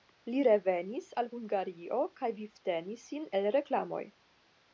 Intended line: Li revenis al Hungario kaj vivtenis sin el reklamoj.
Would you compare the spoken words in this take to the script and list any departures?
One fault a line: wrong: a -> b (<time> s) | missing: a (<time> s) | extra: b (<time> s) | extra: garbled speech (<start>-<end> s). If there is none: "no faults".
no faults